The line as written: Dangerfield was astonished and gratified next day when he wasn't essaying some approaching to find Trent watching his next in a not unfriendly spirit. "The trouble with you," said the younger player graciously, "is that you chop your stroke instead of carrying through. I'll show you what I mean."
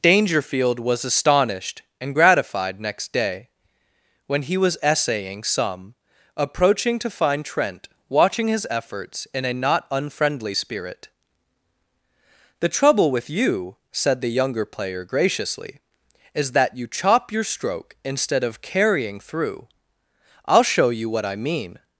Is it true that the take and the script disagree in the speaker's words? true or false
true